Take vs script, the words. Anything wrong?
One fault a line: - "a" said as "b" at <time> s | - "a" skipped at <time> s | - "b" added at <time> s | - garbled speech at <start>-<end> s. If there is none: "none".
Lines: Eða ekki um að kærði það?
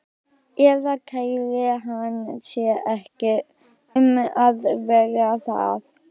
- "kærði hann sig" added at 1.1 s
- "kærði" said as "vera" at 4.9 s